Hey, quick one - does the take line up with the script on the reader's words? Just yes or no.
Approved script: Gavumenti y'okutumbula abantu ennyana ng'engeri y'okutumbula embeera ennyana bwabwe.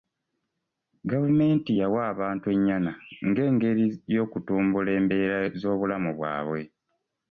no